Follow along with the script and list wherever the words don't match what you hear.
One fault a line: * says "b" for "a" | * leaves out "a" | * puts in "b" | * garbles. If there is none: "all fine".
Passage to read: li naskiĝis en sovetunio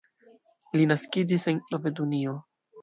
all fine